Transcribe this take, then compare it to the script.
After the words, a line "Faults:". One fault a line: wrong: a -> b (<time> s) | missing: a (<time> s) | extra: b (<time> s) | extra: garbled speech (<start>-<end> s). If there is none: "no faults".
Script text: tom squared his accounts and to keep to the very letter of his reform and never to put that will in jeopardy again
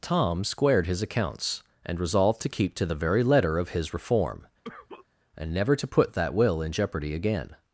tom squared his accounts and resolved to keep to the very letter of his reform and never to put that will in jeopardy again
Faults:
extra: resolved (2.0 s)